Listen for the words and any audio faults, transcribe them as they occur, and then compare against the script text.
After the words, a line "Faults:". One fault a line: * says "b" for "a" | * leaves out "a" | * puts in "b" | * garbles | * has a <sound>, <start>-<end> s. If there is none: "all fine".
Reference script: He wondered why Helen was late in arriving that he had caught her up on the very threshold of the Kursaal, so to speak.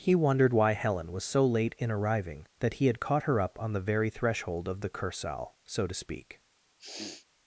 He wondered why Helen was so late in arriving that he had caught her up on the very threshold of the Kursaal, so to speak.
Faults:
* puts in "so"
* has a sniff, 6.8-7.3 s